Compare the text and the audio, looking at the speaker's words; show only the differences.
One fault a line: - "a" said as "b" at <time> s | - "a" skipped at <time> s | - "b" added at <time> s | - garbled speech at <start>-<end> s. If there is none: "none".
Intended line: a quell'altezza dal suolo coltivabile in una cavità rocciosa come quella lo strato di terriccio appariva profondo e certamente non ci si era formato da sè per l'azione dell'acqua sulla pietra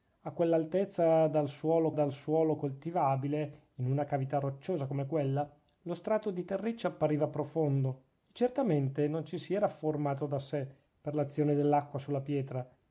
- "dal suolo" added at 1.9 s